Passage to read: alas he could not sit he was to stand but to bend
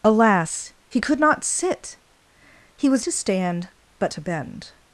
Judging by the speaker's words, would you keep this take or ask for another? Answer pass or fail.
pass